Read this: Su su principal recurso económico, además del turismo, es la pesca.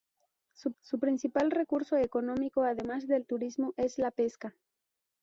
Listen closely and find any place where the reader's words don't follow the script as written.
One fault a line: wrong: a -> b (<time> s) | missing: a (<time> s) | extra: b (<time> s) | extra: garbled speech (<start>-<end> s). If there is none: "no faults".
no faults